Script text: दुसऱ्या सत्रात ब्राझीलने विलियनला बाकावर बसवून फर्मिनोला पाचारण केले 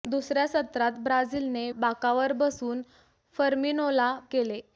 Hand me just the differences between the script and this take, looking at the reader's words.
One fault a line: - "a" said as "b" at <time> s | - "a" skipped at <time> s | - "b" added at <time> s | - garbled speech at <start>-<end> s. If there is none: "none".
- "विलियनला" skipped at 1.7 s
- "पाचारण" skipped at 4.1 s